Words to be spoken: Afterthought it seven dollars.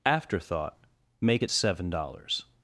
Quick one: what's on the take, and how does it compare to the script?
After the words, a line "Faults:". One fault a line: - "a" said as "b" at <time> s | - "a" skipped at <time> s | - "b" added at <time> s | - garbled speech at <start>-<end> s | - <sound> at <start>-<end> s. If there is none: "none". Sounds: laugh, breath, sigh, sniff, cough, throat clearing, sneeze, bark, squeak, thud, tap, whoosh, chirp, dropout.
Afterthought make it seven dollars.
Faults:
- "make" added at 1.2 s